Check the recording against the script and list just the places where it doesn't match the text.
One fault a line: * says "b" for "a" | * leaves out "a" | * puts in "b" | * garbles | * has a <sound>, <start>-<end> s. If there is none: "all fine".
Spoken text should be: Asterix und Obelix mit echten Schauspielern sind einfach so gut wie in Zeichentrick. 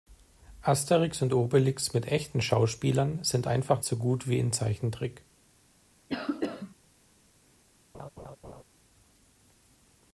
* has a cough, 6.1-6.8 s
* has a laugh, 7.9-8.6 s